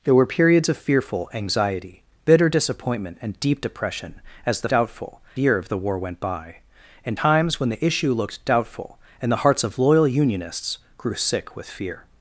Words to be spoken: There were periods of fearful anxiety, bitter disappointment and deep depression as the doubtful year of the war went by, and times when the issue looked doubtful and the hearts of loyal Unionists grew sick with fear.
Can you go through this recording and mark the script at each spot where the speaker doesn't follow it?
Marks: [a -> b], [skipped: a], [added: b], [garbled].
There were periods of fearful anxiety, bitter disappointment and deep depression as the doubtful year of the war went by, and times when the issue looked doubtful and the hearts of loyal Unionists grew sick with fear.